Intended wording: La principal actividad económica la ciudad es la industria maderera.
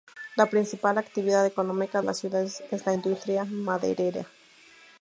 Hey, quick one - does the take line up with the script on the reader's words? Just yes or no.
yes